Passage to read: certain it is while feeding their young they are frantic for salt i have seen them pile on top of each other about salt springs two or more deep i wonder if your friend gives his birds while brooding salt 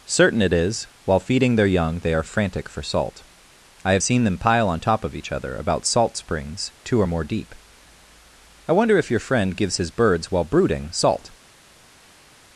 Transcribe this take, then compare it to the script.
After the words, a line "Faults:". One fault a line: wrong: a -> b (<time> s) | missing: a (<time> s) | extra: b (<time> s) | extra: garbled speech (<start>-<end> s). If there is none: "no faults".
certain it is while feeding their young they are frantic for salt i have seen them pile on top of each other about salt springs two or more deep i wonder if your friend gives his birds while brooding salt
Faults:
no faults